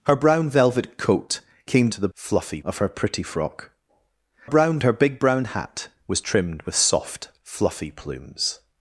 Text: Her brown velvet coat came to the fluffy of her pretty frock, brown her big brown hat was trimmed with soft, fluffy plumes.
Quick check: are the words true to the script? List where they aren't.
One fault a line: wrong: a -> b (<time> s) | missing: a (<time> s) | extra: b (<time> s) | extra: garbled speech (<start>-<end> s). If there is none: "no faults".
no faults